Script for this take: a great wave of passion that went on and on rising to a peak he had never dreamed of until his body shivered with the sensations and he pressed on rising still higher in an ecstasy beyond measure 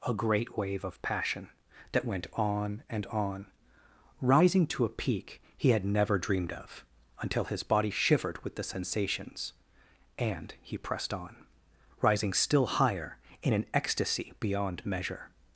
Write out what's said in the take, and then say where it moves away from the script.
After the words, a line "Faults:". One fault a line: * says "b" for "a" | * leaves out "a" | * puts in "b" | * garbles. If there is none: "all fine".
a great wave of passion that went on and on rising to a peak he had never dreamed of until his body shivered with the sensations and he pressed on rising still higher in an ecstasy beyond measure
Faults:
all fine